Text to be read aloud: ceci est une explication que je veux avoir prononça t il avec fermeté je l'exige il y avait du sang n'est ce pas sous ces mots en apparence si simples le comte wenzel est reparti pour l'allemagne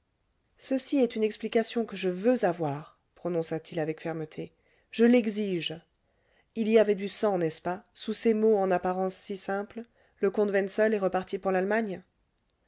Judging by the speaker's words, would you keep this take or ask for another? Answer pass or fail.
pass